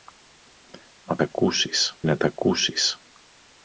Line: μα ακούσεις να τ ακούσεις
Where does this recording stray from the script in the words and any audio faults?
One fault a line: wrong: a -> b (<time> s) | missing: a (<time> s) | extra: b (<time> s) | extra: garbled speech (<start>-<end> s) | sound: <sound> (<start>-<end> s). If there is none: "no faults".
no faults